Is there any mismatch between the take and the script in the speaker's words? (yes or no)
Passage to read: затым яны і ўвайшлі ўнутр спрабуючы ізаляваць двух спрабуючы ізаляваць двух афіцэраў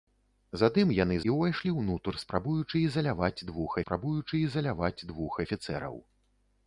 no